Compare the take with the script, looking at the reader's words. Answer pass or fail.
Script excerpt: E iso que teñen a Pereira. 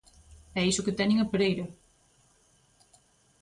pass